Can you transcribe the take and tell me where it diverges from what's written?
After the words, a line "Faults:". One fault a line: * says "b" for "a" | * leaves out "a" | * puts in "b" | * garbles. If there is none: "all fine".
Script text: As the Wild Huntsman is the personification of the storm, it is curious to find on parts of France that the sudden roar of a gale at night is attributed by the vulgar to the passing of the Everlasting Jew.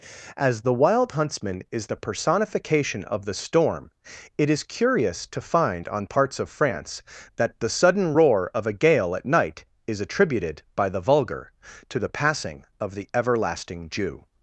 As the Wild Huntsman is the personification of the storm, it is curious to find on parts of France that the sudden roar of a gale at night is attributed by the vulgar to the passing of the Everlasting Jew.
Faults:
all fine